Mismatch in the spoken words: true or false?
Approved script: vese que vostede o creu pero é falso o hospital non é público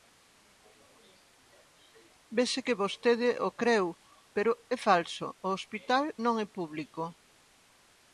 false